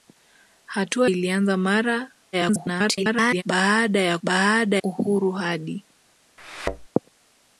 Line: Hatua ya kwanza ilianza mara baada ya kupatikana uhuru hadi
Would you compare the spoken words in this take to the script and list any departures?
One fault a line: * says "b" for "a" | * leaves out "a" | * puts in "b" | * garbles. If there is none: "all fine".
* leaves out "ya kwanza"
* garbles
* says "baada" for "kupatikana"